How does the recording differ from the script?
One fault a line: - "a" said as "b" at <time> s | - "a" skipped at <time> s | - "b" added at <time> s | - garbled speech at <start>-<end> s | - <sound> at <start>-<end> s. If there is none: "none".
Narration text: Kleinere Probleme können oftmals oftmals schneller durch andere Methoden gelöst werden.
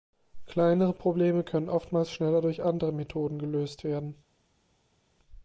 - "oftmals" skipped at 2.1 s